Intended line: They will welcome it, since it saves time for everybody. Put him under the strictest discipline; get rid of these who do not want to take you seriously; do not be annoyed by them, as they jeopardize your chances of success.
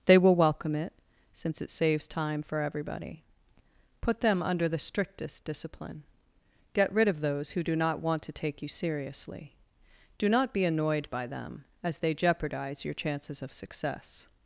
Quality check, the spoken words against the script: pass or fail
fail